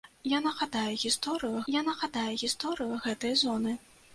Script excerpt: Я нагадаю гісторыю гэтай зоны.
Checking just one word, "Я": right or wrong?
right